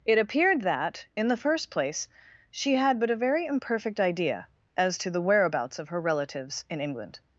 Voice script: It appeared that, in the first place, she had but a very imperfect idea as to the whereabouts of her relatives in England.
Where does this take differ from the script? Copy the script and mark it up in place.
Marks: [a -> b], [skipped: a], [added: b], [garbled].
It appeared that, in the first place, she had but a very imperfect idea as to the whereabouts of her relatives in England.